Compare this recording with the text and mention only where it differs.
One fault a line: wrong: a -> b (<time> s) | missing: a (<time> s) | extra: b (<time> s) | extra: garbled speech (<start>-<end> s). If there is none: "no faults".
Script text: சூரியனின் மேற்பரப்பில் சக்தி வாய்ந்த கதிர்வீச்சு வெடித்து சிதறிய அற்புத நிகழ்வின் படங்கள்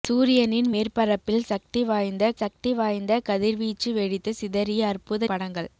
extra: சக்தி வாய்ந்த (2.3 s)
missing: நிகழ்வின் (5.3 s)